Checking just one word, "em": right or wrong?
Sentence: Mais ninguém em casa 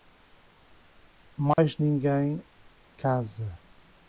wrong